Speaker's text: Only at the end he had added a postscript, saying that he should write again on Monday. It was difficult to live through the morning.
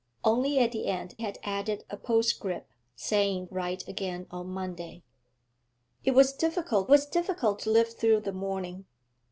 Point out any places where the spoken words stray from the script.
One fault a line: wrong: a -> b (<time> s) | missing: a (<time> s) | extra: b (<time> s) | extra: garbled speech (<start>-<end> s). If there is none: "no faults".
missing: he (1.1 s)
missing: that he should (3.5 s)
extra: was difficult (6.9 s)